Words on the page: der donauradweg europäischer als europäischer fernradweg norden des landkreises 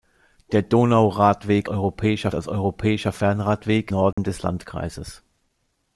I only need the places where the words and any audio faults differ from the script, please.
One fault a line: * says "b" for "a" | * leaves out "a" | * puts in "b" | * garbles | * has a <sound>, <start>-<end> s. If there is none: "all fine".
* has a dropout, 4.1-4.2 s